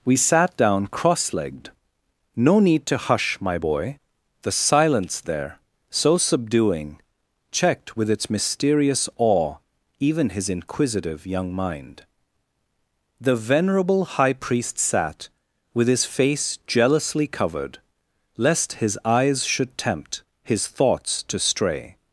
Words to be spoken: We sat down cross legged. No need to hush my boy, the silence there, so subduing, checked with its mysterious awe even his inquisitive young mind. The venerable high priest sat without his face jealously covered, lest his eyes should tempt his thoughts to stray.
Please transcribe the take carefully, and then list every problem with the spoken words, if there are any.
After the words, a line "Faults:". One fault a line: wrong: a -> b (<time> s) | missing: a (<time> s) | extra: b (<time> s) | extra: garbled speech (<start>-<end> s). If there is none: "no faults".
We sat down cross legged. No need to hush my boy, the silence there, so subduing, checked with its mysterious awe even his inquisitive young mind. The venerable high priest sat with his face jealously covered, lest his eyes should tempt his thoughts to stray.
Faults:
wrong: without -> with (15.7 s)